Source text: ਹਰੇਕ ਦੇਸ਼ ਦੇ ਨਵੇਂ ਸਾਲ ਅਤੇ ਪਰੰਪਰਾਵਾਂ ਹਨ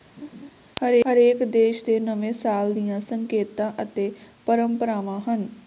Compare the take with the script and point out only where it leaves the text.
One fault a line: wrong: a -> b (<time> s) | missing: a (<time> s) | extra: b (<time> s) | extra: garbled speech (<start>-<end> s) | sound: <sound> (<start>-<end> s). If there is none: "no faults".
sound: laugh (0.2-0.5 s)
extra: ਦੀਆਂ ਸੰਕੇਤਾਂ (2.7 s)